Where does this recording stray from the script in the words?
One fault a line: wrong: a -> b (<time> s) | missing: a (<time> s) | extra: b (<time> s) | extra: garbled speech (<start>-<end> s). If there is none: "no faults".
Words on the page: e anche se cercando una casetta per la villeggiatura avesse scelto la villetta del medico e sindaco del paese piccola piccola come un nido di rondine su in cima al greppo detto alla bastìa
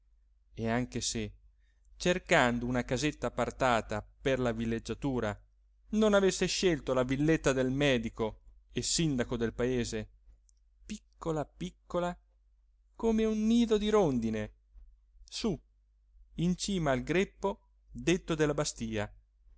extra: appartata (3.3 s)
extra: non (5.9 s)
wrong: alla -> della (18.3 s)